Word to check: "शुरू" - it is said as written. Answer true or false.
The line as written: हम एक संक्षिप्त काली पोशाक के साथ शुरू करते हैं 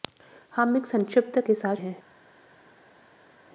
false